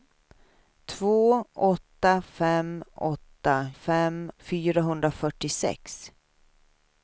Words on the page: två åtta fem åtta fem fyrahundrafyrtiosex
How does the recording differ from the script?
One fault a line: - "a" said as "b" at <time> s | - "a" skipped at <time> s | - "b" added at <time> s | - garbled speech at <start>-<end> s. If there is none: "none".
none